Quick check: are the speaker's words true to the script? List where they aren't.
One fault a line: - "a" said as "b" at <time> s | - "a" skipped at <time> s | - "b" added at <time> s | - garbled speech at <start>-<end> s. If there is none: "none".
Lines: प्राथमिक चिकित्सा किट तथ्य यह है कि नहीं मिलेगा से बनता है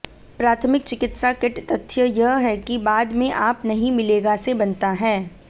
- "बाद में आप" added at 2.8 s